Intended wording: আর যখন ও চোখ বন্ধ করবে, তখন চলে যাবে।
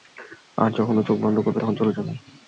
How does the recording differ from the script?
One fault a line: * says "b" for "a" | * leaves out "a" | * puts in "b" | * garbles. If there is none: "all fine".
all fine